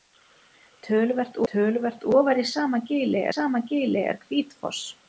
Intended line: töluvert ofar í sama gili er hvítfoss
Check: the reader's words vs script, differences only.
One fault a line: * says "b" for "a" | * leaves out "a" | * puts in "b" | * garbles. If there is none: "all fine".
* puts in "töluvert"
* puts in "sama gili"